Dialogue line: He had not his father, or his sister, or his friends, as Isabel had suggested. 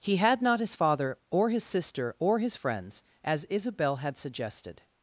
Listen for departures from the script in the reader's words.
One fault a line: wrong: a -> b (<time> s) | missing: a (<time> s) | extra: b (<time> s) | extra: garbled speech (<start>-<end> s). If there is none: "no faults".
no faults